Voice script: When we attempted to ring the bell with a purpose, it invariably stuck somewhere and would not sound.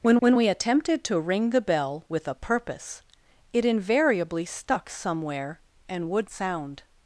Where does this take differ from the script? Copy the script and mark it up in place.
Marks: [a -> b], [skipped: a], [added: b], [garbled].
When [added: when] we attempted to ring the bell with a purpose, it invariably stuck somewhere and would [skipped: not] sound.